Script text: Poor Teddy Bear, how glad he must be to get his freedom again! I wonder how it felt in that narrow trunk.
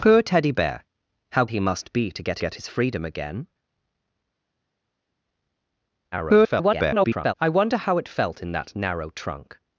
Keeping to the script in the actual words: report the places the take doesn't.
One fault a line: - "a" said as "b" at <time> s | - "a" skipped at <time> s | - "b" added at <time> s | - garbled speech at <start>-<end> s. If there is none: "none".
- "glad" skipped at 1.4 s
- "get" added at 2.4 s
- garbled speech at 6.1-7.3 s